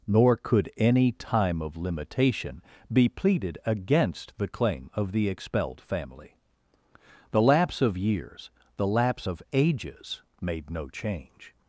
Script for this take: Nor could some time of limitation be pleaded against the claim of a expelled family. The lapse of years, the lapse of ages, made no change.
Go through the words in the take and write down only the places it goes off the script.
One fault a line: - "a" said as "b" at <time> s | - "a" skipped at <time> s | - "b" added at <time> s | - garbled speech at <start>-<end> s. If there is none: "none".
- "some" said as "any" at 0.8 s
- "a" said as "the" at 5.1 s